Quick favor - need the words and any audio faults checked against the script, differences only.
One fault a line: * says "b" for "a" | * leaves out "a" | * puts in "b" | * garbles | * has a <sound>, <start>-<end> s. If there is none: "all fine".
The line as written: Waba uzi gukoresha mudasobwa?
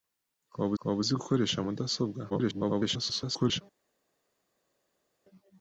* puts in "waba"
* garbles